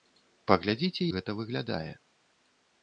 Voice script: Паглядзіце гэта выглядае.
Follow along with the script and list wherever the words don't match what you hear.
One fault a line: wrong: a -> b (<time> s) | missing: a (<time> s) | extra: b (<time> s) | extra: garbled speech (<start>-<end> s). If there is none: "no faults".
no faults